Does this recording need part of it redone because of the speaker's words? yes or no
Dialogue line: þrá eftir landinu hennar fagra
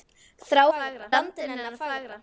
yes